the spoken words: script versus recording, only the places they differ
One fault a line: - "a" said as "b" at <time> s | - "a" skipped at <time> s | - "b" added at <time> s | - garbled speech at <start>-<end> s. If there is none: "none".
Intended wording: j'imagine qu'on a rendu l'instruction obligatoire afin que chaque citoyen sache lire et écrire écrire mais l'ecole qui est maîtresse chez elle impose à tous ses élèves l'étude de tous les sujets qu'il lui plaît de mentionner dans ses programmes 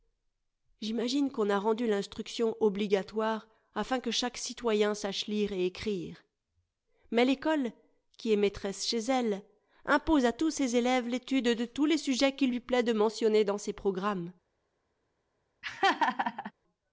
- "écrire" skipped at 6.2 s